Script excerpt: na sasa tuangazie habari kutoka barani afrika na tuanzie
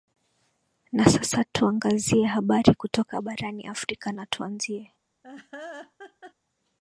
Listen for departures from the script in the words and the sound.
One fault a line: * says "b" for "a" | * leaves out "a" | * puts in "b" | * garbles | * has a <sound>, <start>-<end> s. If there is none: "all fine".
* has a laugh, 5.2-6.3 s